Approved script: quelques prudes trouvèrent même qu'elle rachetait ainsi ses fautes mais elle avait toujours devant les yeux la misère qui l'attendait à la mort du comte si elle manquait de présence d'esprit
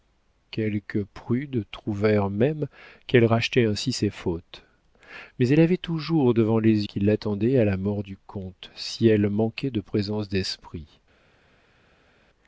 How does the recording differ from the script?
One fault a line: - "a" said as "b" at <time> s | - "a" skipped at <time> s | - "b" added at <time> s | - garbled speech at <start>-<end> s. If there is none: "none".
- "yeux la misère" skipped at 6.9 s